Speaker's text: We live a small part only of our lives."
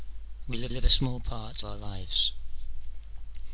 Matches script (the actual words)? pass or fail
fail